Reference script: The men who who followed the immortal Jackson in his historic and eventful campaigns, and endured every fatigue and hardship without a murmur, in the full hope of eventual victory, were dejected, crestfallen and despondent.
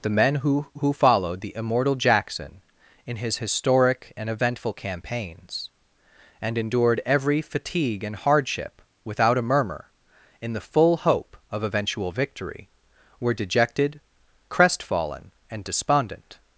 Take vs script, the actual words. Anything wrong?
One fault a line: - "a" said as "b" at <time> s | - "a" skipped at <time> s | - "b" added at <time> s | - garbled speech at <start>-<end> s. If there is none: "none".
none